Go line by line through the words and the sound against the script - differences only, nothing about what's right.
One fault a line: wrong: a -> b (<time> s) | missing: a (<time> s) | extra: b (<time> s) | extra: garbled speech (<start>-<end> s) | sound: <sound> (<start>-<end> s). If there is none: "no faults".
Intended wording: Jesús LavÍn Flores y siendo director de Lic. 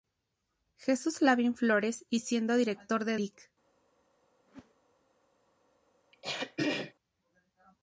sound: whoosh (4.5-4.7 s)
sound: throat clearing (6.1-6.9 s)